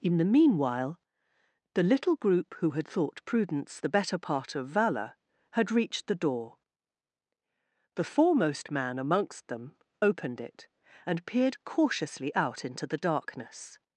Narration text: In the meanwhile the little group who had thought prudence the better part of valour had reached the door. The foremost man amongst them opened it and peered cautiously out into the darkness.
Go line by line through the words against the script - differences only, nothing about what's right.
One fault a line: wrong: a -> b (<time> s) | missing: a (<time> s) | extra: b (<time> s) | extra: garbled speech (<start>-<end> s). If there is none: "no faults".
no faults